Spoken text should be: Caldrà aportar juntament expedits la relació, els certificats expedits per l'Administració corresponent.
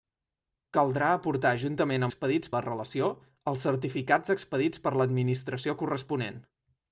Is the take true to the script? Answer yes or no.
yes